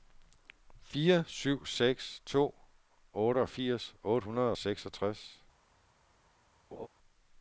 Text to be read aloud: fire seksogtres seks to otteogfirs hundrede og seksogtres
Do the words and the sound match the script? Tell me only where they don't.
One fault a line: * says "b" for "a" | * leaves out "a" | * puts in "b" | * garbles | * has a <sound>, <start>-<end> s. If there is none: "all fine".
* says "syv" for "seksogtres"
* puts in "otte"
* has a laugh, 6.7-6.9 s